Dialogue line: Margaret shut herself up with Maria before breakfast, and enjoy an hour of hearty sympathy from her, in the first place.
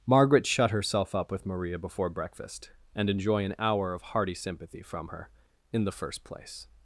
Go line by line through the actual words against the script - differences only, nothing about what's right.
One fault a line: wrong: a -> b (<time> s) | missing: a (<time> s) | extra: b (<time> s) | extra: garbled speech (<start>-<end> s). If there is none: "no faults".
no faults